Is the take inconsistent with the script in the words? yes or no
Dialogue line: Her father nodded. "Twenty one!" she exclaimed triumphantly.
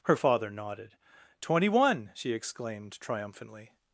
no